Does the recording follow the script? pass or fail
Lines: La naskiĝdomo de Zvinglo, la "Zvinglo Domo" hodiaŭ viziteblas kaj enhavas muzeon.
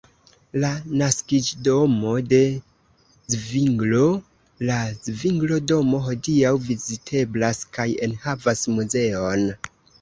pass